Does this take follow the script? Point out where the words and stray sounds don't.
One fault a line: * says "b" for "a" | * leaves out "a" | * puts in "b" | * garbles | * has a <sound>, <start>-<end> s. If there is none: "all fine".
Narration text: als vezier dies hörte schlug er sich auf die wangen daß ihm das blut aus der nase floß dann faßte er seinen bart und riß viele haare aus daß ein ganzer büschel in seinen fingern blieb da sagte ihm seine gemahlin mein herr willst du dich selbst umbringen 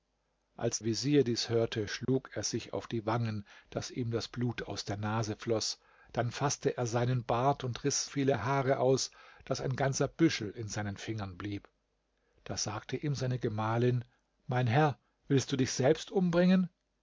* has a dropout, 2.0-2.1 s